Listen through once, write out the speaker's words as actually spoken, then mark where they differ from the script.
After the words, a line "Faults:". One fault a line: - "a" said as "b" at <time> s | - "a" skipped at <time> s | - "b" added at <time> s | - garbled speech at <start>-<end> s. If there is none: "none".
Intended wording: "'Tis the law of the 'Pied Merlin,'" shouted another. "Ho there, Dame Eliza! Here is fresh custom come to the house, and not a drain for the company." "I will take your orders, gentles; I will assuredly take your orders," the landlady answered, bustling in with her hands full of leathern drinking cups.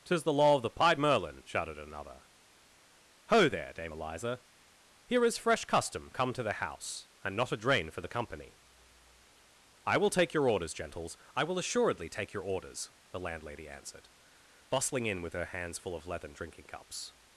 "'Tis the law of the 'Pied Merlin,'" shouted another. "Ho there, Dame Eliza! Here is fresh custom come to the house, and not a drain for the company." "I will take your orders, gentles; I will assuredly take your orders," the landlady answered, bustling in with her hands full of leathern drinking cups.
Faults:
none